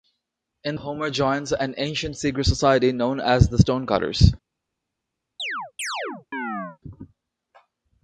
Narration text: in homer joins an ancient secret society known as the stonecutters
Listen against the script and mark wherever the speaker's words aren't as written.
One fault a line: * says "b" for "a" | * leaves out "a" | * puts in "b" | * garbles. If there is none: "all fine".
all fine